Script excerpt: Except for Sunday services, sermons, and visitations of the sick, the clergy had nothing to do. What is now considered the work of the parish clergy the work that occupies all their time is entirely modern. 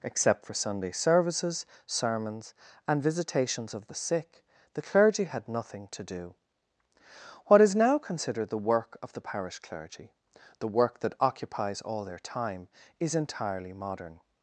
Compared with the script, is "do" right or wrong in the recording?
right